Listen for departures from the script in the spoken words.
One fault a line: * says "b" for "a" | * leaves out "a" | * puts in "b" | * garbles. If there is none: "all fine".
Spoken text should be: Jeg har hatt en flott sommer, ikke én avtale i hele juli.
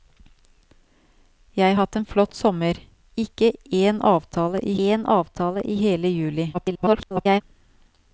* leaves out "har"
* puts in "én avtale i"
* garbles